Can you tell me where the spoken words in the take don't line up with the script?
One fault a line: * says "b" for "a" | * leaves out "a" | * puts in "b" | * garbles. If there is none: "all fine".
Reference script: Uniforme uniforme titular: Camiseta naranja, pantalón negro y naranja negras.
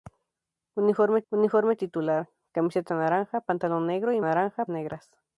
all fine